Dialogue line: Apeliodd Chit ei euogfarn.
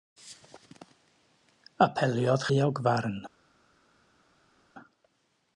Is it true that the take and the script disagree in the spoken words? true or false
true